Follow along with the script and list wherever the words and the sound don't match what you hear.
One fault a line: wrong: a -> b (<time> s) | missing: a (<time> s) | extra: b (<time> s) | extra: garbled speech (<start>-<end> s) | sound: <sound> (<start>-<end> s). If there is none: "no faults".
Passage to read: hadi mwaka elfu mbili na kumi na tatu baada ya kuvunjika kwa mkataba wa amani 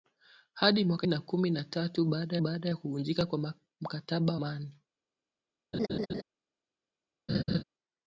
missing: elfu mbili (1.1 s)
extra: baada (2.4 s)
missing: wa (4.4 s)
sound: laugh (5.7-6.2 s)
sound: laugh (7.3-7.6 s)